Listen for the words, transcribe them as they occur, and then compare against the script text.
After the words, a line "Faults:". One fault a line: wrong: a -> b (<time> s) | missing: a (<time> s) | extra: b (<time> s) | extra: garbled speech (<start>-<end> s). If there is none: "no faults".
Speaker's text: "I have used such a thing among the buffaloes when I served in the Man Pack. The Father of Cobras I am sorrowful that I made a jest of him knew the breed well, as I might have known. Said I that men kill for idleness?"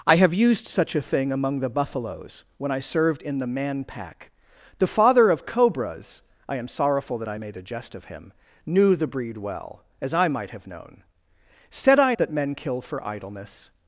"I have used such a thing among the buffaloes when I served in the Man Pack. The Father of Cobras I am sorrowful that I made a jest of him knew the breed well, as I might have known. Said I that men kill for idleness?"
Faults:
no faults